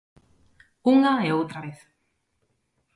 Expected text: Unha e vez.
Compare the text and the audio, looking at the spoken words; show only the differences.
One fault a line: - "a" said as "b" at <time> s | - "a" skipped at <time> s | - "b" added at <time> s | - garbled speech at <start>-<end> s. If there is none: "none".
- "outra" added at 1.4 s